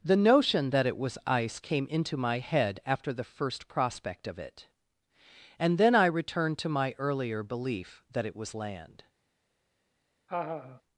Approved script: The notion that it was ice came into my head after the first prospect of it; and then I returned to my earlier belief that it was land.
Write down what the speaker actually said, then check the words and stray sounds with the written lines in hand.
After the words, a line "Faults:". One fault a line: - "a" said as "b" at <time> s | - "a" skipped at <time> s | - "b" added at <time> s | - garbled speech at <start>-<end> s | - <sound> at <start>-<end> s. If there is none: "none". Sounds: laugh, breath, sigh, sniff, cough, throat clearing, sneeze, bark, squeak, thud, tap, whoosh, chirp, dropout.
The notion that it was ice came into my head after the first prospect of it; and then I returned to my earlier belief that it was land.
Faults:
- laugh at 10.3-10.8 s